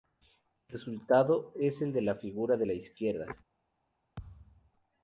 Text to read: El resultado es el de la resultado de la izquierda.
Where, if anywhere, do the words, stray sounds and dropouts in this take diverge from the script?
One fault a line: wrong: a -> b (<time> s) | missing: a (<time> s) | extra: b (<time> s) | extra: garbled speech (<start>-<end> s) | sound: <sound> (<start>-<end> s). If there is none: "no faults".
wrong: resultado -> figura (2.1 s)
sound: thud (4.2-4.7 s)